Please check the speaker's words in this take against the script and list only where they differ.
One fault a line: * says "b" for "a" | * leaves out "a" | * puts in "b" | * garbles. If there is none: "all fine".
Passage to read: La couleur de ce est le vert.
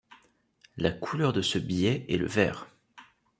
* puts in "billet"